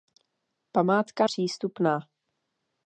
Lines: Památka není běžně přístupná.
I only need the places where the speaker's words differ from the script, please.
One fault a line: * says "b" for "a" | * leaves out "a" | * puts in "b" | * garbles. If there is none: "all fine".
* leaves out "není běžně"